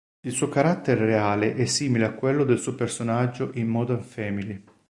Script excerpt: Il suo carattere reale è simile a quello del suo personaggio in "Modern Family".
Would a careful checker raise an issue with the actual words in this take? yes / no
no